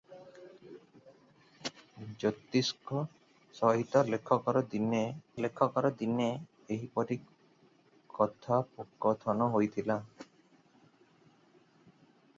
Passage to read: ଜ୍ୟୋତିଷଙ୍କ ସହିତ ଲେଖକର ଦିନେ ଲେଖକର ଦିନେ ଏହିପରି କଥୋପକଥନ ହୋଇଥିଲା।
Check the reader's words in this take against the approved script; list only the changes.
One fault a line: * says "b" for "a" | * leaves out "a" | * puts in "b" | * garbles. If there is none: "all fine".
all fine